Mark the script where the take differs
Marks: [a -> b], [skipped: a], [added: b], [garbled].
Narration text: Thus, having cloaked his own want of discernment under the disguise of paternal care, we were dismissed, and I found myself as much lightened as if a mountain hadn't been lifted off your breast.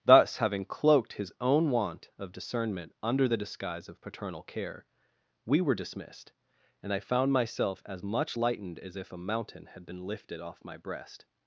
Thus, having cloaked his own want of discernment under the disguise of paternal care, we were dismissed, and I found myself as much lightened as if a mountain [hadn't -> had] been lifted off [your -> my] breast.